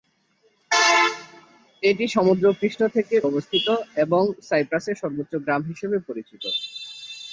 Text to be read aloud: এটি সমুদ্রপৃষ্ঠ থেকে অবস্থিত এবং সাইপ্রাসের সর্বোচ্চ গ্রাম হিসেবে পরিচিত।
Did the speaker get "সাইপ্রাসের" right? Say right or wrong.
right